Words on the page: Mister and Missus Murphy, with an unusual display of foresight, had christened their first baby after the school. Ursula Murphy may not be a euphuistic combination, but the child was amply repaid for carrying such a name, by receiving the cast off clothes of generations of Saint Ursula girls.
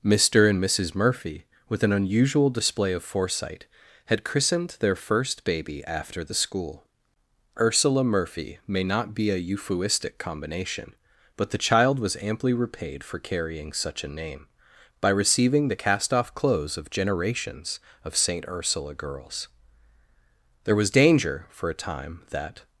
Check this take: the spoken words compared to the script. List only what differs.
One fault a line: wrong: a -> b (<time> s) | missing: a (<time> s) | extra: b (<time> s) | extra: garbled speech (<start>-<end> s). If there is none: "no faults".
extra: There was danger for a time that (20.6 s)